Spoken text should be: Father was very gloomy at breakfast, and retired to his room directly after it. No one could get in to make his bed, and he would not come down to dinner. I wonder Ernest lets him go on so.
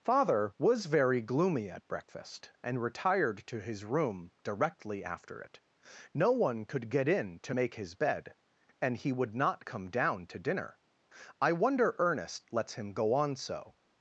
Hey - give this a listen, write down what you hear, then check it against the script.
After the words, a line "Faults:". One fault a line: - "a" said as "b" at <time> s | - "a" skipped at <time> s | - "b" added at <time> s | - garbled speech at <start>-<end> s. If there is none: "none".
Father was very gloomy at breakfast, and retired to his room directly after it. No one could get in to make his bed, and he would not come down to dinner. I wonder Ernest lets him go on so.
Faults:
none